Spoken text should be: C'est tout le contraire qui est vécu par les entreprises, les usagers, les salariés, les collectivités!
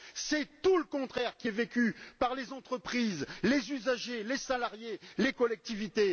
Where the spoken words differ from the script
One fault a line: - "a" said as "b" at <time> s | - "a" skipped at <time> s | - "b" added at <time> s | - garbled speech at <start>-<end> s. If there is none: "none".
none